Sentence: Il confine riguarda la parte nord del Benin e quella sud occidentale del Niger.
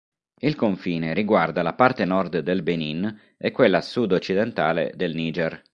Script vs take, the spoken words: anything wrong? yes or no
no